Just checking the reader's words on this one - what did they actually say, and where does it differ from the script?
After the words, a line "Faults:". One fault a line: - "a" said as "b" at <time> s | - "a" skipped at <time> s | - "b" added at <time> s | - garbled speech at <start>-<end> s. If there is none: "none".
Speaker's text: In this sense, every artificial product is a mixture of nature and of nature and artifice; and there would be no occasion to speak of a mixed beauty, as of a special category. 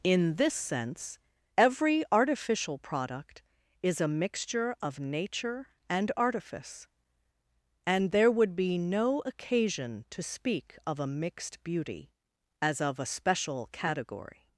In this sense, every artificial product is a mixture of nature and artifice; and there would be no occasion to speak of a mixed beauty, as of a special category.
Faults:
- "of nature and" skipped at 6.1 s